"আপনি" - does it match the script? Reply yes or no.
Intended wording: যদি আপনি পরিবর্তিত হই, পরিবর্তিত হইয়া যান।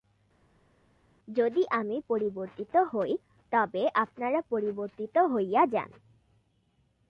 no